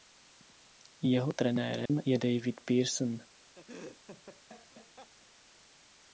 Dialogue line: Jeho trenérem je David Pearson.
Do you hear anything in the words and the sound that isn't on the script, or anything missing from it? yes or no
yes